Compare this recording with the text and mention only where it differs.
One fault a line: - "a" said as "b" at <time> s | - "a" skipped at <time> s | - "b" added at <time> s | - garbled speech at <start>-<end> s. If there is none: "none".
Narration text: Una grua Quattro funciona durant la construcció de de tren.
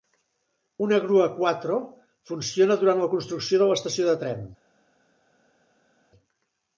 - "l'estació" added at 3.7 s